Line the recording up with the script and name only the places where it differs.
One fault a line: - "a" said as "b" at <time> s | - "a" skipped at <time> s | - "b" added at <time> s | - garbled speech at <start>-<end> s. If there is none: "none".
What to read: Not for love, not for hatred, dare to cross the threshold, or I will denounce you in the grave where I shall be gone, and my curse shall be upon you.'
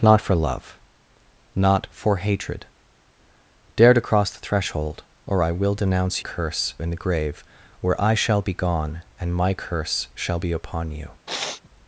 - "you" said as "curse" at 6.2 s